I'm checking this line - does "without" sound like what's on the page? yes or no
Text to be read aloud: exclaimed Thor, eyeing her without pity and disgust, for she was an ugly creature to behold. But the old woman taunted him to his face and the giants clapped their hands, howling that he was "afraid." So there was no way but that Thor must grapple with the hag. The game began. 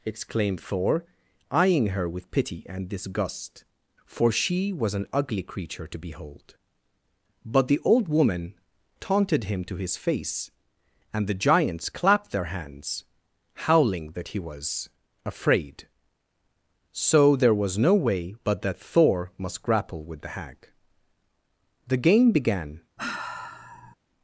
no